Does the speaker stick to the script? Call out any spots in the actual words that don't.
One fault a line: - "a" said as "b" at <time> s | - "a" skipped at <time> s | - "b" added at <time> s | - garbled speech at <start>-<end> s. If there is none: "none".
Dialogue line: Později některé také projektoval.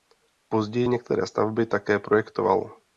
- "stavby" added at 1.3 s